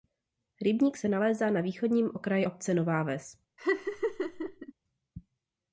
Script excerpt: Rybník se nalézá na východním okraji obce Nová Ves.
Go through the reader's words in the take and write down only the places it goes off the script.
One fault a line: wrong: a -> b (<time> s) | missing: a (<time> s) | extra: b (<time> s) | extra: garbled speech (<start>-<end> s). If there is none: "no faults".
no faults